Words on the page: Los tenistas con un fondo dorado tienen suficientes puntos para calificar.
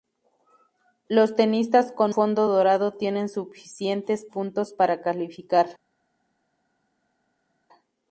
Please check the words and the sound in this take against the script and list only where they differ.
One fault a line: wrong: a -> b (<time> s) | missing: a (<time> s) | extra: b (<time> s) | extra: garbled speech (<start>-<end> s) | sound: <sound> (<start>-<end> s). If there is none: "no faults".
missing: un (2.1 s)